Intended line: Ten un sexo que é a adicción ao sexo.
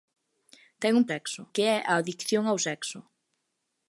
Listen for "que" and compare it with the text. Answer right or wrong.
right